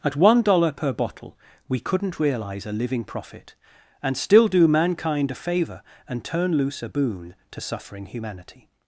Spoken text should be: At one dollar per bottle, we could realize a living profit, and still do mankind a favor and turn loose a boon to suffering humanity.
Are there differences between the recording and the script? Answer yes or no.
yes